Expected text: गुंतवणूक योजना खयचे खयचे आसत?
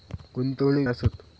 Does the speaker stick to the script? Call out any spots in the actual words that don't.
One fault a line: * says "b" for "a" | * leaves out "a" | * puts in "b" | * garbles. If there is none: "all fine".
* leaves out "योजना खयचे खयचे"